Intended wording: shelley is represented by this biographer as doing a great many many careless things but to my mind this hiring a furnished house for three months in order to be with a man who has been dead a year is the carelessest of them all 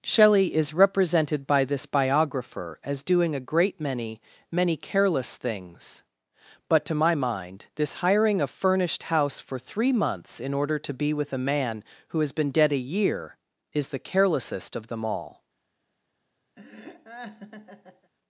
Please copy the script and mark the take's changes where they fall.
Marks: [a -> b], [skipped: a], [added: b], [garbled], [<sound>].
shelley is represented by this biographer as doing a great many many careless things but to my mind this hiring a furnished house for three months in order to be with a man who has been dead a year is the carelessest of them all [laugh]